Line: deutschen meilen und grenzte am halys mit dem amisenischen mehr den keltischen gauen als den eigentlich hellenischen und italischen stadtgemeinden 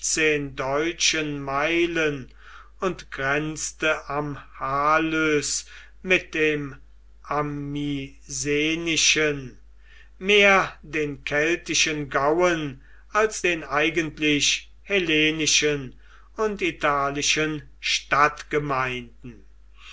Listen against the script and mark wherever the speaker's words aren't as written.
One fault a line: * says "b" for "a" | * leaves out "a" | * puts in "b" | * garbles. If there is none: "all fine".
all fine